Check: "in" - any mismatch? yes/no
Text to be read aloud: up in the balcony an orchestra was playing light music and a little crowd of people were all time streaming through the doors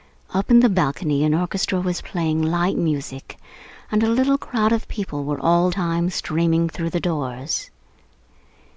no